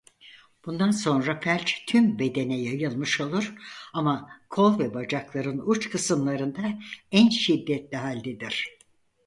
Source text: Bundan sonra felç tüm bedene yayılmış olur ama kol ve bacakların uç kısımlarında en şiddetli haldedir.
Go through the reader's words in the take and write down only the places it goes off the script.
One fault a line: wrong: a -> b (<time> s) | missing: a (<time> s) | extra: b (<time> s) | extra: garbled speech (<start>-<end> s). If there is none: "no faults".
no faults